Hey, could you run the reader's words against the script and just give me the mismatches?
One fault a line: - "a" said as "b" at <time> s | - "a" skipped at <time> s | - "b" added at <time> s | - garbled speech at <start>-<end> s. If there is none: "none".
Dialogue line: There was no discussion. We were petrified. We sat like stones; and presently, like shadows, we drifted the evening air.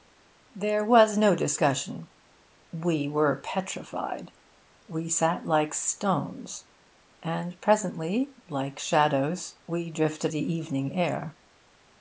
none